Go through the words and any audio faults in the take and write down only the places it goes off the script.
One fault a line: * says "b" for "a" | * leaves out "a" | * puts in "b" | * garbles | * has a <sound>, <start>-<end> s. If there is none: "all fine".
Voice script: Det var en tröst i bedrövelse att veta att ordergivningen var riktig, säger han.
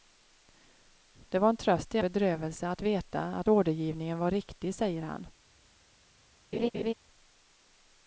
* has a laugh, 6.5-6.9 s